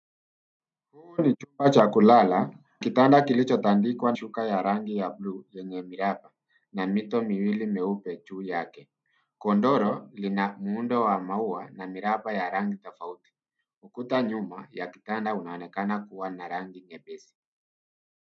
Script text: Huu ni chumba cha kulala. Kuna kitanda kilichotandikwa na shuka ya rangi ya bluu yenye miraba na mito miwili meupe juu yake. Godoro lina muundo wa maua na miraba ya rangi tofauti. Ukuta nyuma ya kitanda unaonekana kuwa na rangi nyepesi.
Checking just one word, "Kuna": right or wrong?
wrong